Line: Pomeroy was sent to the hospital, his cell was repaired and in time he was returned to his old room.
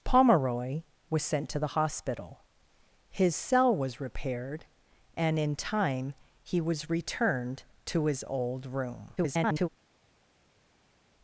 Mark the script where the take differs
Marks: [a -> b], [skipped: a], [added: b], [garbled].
Pomeroy was sent to the hospital, his cell was repaired and in time he was returned to his old room. [garbled]